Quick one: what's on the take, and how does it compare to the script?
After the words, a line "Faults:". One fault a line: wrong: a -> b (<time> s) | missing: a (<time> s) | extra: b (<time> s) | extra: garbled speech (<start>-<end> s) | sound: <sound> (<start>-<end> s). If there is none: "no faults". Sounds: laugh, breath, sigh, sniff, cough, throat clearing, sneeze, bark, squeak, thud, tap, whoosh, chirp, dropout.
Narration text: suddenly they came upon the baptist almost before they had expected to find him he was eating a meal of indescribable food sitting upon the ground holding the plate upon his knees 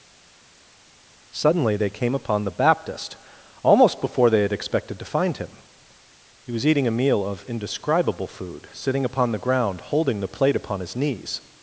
suddenly they came upon the baptist almost before they had expected to find him he was eating a meal of indescribable food sitting upon the ground holding the plate upon his knees
Faults:
no faults